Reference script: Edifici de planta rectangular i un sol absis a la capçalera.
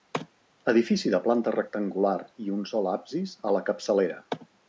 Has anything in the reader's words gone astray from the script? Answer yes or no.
no